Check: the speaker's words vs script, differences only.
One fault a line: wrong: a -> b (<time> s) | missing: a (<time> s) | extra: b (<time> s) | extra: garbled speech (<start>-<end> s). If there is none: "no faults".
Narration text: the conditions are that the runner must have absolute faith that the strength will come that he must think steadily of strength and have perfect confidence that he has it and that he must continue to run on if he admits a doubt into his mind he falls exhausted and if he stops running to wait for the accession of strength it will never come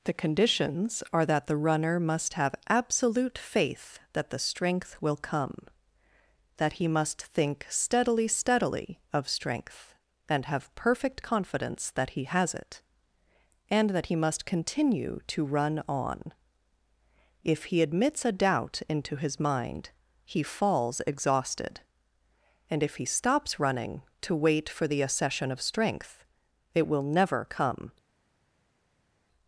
extra: steadily (8.3 s)